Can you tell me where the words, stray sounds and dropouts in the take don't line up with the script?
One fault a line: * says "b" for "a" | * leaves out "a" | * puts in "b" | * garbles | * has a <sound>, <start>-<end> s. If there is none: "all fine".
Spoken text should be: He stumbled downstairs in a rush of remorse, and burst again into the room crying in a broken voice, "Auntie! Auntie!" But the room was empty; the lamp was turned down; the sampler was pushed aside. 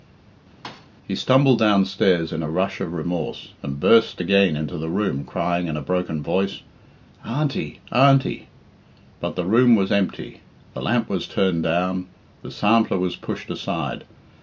* has a thud, 0.6-0.9 s